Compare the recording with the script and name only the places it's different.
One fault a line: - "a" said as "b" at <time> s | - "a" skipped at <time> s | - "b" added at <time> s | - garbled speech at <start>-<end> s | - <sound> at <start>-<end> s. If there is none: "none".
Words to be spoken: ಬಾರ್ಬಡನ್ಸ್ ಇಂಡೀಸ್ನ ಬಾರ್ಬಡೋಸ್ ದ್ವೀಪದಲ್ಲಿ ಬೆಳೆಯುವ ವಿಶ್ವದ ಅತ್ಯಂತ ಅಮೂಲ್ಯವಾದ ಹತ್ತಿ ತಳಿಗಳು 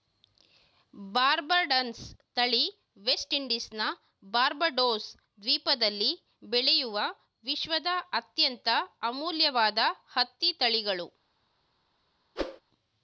- "ತಳಿ ವೆಸ್ಟ್" added at 2.4 s
- whoosh at 12.4-12.6 s